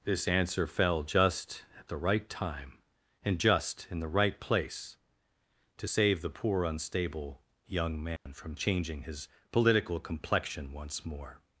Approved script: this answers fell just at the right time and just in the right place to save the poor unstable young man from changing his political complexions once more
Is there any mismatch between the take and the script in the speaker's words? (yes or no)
yes